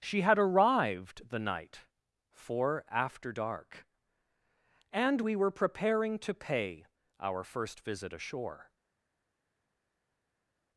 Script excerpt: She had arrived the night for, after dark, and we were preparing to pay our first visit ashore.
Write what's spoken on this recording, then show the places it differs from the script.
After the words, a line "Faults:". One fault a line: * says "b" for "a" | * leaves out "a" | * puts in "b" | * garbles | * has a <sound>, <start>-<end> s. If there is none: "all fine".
She had arrived the night for, after dark, and we were preparing to pay our first visit ashore.
Faults:
all fine